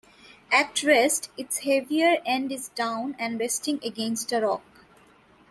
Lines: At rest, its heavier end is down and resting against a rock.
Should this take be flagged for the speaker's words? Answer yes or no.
no